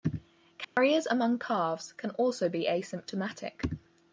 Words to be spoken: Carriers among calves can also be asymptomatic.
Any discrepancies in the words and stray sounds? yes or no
yes